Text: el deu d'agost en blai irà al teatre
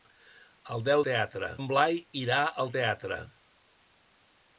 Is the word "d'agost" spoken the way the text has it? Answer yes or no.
no